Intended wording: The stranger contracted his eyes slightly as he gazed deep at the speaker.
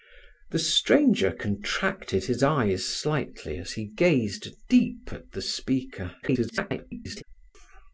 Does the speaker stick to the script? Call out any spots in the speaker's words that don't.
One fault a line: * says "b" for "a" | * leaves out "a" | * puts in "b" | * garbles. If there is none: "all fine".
* garbles